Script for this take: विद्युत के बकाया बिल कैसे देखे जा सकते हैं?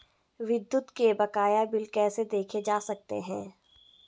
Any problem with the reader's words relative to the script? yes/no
no